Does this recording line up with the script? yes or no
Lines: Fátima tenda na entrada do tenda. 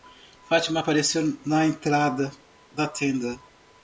no